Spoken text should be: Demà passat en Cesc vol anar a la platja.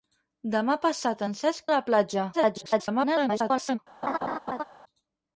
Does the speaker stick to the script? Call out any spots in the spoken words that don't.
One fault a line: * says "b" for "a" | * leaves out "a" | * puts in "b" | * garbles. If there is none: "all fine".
* leaves out "vol anar"
* garbles